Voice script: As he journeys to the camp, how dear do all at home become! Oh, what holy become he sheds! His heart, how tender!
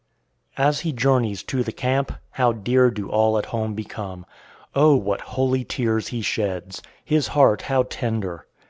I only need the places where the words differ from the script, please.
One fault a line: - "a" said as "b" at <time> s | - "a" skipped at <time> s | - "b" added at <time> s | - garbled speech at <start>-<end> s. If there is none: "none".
- "become" said as "tears" at 5.7 s